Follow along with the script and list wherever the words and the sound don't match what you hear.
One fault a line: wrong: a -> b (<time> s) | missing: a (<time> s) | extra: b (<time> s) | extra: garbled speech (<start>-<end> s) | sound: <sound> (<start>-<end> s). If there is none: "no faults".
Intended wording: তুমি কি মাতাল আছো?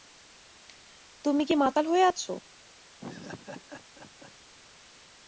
extra: হয়ে (1.9 s)
sound: laugh (3.0-4.3 s)